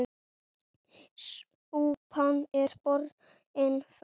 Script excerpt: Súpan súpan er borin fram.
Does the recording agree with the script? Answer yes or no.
no